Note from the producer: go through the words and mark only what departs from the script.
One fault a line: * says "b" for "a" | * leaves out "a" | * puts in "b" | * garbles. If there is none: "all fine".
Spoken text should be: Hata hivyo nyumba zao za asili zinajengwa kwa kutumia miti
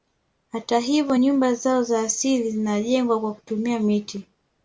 all fine